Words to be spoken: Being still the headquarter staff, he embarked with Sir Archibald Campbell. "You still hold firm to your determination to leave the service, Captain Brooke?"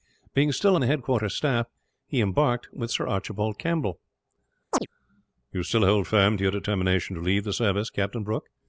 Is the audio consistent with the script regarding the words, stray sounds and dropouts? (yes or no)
no